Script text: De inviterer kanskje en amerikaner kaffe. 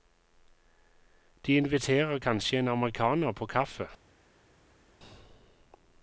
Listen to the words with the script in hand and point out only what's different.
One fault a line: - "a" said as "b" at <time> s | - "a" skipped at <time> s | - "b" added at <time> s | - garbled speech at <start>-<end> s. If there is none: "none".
- "på" added at 3.3 s